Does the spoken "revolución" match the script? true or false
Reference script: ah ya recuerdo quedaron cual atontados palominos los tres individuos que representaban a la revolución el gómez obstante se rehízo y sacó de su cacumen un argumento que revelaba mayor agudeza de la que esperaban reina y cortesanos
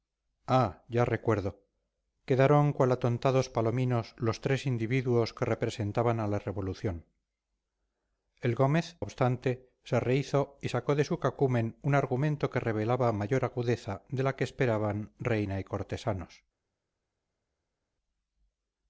true